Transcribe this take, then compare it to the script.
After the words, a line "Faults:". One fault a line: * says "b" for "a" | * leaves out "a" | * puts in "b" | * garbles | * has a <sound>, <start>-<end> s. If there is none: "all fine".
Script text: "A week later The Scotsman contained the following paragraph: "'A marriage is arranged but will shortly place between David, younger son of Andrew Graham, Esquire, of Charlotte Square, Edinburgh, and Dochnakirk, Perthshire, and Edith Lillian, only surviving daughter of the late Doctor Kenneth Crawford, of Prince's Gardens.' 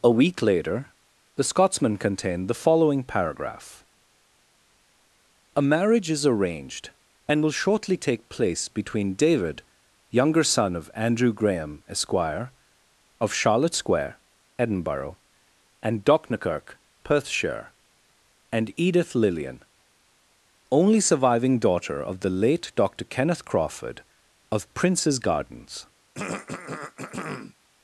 "A week later The Scotsman contained the following paragraph: "'A marriage is arranged and will shortly take place between David, younger son of Andrew Graham, Esquire, of Charlotte Square, Edinburgh, and Dochnakirk, Perthshire, and Edith Lillian, only surviving daughter of the late Doctor Kenneth Crawford, of Prince's Gardens.'
Faults:
* says "and" for "but"
* puts in "take"
* has a throat clearing, 26.1-27.5 s